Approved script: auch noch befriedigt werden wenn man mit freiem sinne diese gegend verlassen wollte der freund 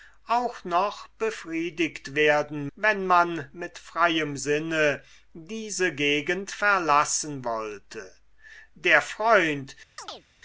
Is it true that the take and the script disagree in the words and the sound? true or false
true